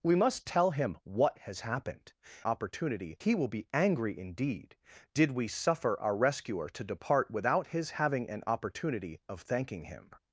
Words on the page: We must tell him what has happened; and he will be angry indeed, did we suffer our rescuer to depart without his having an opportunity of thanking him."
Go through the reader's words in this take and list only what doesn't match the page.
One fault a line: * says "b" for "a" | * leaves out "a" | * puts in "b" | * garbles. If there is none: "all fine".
* says "opportunity" for "and"